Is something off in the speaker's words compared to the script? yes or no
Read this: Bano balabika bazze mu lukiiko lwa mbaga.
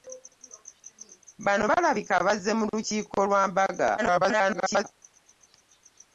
yes